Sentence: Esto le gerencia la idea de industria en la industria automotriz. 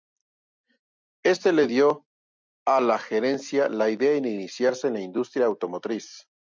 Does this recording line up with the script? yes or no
no